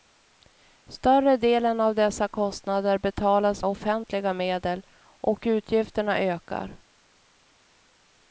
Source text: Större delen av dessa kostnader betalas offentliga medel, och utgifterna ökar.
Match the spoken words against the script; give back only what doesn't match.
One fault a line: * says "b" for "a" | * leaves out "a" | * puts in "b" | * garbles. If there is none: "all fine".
all fine